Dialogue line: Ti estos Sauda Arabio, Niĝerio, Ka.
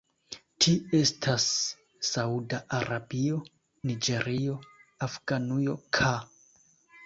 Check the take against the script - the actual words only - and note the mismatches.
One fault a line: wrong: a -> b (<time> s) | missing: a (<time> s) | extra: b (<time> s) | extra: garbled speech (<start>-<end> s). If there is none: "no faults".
wrong: estos -> estas (1.0 s)
extra: Afganujo (5.1 s)